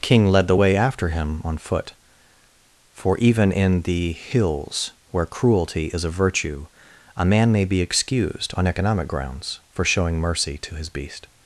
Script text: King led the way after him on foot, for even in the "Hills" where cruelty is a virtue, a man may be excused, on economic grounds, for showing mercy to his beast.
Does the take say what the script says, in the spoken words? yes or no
yes